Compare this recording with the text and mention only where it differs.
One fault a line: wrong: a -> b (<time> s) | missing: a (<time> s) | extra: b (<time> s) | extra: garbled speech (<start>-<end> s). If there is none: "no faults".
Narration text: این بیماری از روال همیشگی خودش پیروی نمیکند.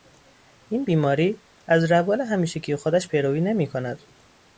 no faults